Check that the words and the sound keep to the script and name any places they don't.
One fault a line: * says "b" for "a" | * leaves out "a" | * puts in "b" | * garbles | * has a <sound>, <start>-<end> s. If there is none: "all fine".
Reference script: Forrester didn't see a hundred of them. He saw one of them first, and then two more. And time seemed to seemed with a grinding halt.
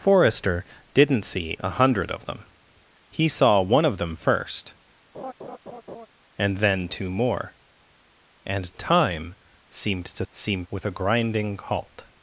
* has a laugh, 5.1-6.1 s